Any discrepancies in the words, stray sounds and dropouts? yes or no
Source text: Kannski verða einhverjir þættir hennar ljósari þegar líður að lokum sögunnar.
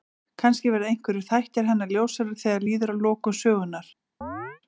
yes